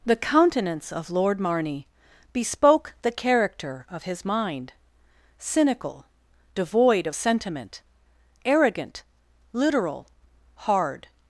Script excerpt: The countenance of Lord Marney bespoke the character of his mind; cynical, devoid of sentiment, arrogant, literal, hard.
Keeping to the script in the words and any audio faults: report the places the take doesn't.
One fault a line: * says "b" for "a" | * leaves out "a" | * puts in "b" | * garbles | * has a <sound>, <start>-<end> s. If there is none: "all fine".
all fine